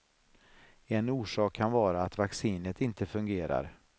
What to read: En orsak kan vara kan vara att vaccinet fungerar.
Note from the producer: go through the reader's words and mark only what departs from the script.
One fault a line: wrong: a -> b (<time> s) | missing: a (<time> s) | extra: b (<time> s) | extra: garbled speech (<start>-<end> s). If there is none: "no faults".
missing: kan vara (2.0 s)
extra: inte (2.8 s)